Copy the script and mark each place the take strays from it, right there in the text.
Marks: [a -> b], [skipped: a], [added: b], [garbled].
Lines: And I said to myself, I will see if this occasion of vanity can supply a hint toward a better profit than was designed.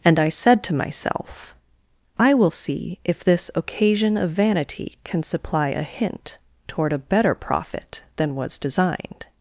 And I said to myself, I will see if this occasion of vanity can supply a hint toward a better profit than was designed.